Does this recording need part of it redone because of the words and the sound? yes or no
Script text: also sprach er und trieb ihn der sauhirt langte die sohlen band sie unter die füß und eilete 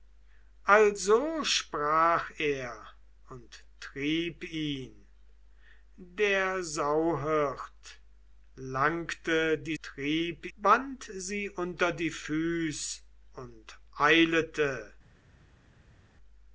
yes